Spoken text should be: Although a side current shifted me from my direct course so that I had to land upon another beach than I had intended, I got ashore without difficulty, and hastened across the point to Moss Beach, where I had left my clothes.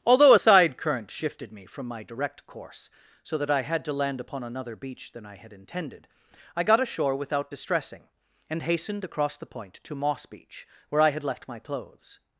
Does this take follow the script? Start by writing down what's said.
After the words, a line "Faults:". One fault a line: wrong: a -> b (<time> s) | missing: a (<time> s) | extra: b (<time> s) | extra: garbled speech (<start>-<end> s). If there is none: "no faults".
Although a side current shifted me from my direct course so that I had to land upon another beach than I had intended, I got ashore without distressing, and hastened across the point to Moss Beach, where I had left my clothes.
Faults:
wrong: difficulty -> distressing (7.5 s)